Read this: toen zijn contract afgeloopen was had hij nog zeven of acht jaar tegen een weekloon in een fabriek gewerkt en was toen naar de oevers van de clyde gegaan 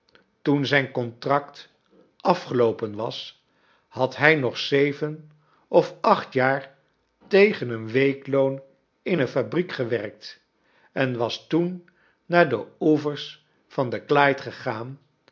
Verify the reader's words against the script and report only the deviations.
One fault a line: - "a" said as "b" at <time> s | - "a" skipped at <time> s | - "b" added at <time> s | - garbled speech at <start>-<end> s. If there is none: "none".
none